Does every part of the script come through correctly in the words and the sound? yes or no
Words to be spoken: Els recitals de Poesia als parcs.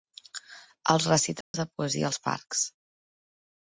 no